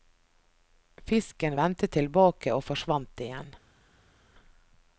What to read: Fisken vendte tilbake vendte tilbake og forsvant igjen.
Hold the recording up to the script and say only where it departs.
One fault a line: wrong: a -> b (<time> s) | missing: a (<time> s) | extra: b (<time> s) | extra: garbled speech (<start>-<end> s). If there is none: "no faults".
missing: vendte tilbake (2.5 s)